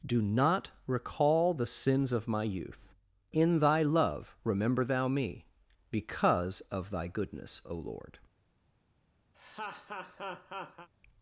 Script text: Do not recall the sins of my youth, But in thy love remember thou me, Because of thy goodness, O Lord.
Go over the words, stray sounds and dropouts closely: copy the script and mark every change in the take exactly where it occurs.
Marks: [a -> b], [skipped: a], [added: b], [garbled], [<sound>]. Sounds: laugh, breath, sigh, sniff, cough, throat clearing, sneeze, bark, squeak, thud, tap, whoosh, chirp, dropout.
Do not recall the sins of my youth, [skipped: But] in thy love remember thou me, Because of thy goodness, O Lord. [laugh]